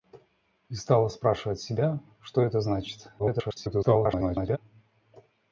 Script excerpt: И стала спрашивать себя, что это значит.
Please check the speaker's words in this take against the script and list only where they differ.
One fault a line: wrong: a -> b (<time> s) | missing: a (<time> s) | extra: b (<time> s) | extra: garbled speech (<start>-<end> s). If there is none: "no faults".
extra: garbled speech (3.2-4.6 s)